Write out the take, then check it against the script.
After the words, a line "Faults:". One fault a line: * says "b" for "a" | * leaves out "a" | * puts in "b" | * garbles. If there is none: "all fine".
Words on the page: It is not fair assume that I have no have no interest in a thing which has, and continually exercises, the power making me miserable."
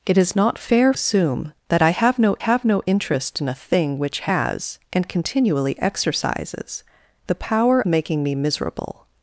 It is not fair assume that I have no have no interest in a thing which has, and continually exercises, the power making me miserable."
Faults:
all fine